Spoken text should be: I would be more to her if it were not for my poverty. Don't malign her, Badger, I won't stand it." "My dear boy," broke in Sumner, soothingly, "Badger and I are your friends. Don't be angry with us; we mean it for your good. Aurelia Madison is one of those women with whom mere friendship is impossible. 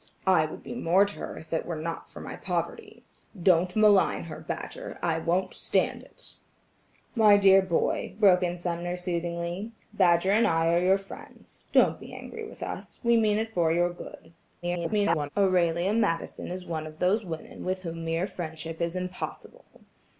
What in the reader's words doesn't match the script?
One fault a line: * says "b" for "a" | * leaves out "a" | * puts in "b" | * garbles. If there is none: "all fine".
* garbles